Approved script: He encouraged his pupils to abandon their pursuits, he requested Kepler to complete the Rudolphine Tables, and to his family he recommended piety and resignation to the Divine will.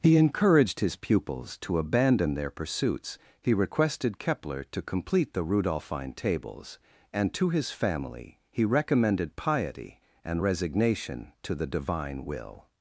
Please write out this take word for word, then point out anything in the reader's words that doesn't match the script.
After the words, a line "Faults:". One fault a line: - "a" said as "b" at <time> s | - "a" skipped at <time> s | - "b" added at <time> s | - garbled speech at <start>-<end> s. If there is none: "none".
He encouraged his pupils to abandon their pursuits, he requested Kepler to complete the Rudolphine Tables, and to his family he recommended piety and resignation to the Divine will.
Faults:
none